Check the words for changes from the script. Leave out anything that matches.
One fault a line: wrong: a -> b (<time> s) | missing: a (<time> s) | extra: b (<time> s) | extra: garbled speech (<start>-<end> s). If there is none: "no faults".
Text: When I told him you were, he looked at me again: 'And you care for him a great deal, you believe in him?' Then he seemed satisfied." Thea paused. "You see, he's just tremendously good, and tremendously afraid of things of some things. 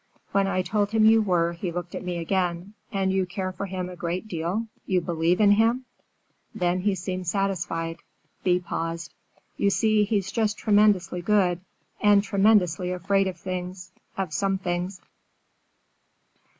no faults